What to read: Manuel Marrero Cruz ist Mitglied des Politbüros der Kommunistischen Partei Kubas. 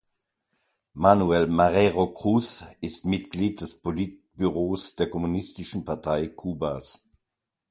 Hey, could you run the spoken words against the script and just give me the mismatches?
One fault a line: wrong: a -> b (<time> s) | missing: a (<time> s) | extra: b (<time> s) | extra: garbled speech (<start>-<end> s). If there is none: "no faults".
no faults